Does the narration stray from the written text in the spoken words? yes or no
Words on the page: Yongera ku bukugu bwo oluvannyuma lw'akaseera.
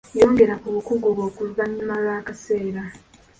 no